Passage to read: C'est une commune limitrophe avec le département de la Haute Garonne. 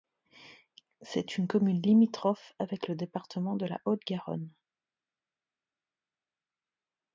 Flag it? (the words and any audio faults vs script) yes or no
no